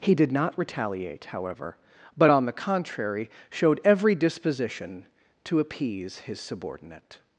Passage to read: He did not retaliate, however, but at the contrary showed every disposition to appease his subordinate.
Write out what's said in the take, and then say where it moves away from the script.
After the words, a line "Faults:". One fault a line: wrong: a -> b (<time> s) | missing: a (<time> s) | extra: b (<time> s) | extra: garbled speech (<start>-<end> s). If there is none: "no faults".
He did not retaliate, however, but on the contrary showed every disposition to appease his subordinate.
Faults:
wrong: at -> on (2.3 s)